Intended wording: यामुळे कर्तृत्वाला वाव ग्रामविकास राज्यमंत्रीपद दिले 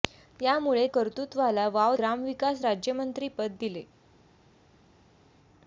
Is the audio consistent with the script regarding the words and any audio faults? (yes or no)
yes